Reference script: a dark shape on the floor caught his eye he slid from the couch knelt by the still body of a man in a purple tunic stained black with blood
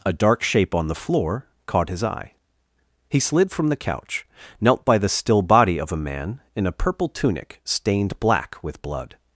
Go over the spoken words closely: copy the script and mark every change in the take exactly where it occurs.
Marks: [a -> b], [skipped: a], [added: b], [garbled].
a dark shape on the floor caught his eye he slid from the couch knelt by the still body of a man in a purple tunic stained black with blood